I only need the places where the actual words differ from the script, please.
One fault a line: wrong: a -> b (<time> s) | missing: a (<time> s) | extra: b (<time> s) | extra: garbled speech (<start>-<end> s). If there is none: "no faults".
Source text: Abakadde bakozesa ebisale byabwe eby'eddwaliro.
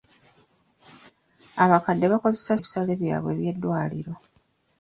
no faults